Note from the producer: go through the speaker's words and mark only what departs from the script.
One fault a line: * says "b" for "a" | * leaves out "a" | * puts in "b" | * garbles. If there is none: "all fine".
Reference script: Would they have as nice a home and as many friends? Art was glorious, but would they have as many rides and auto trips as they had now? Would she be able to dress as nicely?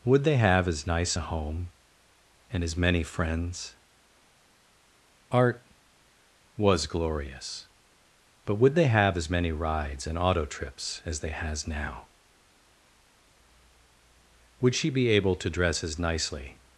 * says "has" for "had"